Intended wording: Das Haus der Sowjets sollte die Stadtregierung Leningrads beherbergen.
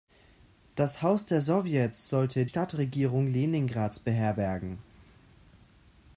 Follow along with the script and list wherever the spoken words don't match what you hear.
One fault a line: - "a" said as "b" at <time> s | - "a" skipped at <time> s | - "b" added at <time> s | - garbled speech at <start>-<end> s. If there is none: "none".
- "die" skipped at 2.5 s